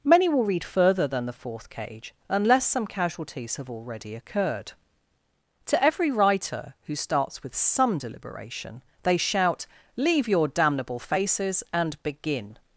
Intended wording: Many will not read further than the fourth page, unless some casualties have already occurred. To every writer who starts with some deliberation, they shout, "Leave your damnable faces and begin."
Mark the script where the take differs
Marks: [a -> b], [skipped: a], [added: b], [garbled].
Many will [skipped: not] read further than the fourth [page, -> cage] unless some casualties have already occurred. To every writer who starts with some deliberation, they shout, "Leave your damnable faces and begin."